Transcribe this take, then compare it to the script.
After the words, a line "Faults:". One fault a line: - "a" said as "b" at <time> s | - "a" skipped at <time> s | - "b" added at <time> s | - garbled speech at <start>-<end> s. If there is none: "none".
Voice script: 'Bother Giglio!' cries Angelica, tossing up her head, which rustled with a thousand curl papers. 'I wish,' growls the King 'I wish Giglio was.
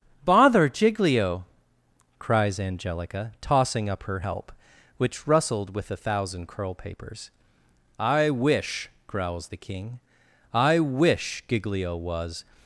'Bother Giglio!' cries Angelica, tossing up her help, which rustled with a thousand curl papers. 'I wish,' growls the King 'I wish Giglio was.
Faults:
- "head" said as "help" at 4.2 s